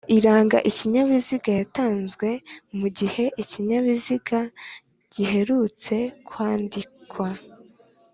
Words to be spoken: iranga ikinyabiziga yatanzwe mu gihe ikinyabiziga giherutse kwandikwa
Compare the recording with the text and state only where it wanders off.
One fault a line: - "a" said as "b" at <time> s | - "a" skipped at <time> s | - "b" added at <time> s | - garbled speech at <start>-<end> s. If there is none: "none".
none